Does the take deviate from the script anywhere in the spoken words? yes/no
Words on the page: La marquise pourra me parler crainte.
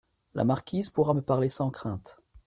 yes